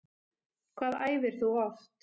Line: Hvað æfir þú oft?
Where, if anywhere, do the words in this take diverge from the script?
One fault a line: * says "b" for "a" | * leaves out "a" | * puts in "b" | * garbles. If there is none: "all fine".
all fine